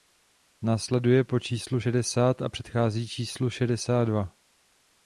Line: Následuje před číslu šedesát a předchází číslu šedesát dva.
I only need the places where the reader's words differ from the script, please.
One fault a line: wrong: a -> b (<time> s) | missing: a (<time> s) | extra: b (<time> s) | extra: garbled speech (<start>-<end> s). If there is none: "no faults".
wrong: před -> po (1.2 s)